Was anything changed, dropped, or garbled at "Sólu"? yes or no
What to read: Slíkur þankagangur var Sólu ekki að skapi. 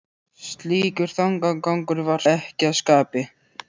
yes